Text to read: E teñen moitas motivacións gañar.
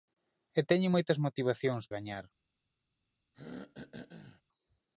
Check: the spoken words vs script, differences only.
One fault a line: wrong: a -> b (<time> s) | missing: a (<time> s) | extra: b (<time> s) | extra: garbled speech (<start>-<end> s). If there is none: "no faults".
no faults